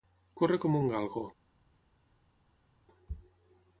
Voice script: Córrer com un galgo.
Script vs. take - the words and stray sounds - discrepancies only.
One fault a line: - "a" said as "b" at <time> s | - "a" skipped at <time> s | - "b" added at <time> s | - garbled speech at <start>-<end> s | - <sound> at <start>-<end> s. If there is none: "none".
none